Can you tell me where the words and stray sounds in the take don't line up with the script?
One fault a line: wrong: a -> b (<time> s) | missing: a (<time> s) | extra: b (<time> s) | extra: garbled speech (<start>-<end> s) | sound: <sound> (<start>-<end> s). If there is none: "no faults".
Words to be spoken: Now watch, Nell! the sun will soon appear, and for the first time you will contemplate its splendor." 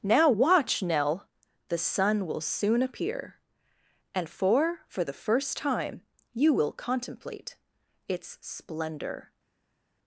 extra: for (4.9 s)